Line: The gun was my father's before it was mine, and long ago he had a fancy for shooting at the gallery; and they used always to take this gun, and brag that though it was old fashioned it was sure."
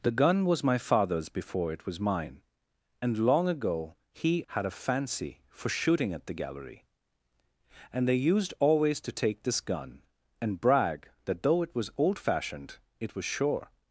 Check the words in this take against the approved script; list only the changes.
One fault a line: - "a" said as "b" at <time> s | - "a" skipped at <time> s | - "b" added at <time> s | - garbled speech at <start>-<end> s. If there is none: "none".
none